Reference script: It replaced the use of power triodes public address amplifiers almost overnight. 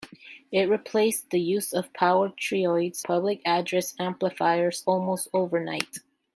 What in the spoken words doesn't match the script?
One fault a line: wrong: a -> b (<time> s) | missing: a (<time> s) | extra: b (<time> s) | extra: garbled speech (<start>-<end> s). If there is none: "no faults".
no faults